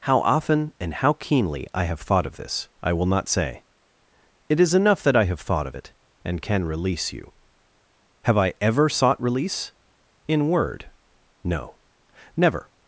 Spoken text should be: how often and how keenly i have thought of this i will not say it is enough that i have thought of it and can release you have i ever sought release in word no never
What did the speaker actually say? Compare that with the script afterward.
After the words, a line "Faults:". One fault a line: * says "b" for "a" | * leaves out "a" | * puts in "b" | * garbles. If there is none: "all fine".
how often and how keenly i have thought of this i will not say it is enough that i have thought of it and can release you have i ever sought release in word no never
Faults:
all fine